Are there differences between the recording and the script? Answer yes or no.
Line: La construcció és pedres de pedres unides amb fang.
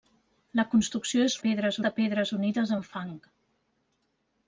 no